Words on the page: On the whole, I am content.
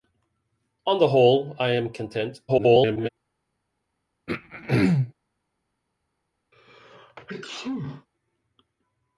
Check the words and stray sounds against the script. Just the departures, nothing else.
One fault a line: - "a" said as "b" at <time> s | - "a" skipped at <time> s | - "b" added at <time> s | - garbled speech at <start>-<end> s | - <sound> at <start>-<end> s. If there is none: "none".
- garbled speech at 2.5-3.1 s
- throat clearing at 4.3-5.1 s
- sneeze at 6.5-8.1 s